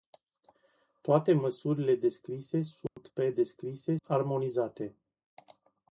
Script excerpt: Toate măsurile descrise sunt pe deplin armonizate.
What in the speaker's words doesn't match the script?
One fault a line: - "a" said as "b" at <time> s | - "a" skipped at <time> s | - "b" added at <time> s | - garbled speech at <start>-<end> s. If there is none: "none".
- "deplin" said as "descrise" at 3.3 s